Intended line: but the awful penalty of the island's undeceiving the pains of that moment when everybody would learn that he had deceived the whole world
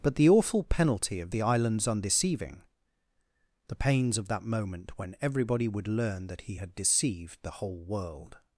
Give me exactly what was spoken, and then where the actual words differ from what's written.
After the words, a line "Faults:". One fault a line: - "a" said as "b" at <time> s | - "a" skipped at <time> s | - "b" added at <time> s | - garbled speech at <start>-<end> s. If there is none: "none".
but the awful penalty of the island's undeceiving the pains of that moment when everybody would learn that he had deceived the whole world
Faults:
none